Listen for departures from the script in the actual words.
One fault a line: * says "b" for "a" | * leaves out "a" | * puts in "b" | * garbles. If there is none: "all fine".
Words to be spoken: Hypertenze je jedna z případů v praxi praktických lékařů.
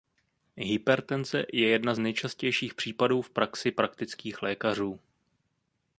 * puts in "nejčastějších"